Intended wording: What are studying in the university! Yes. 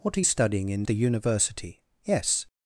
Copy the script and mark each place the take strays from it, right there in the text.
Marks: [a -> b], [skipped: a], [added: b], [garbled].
What are studying in the university! Yes.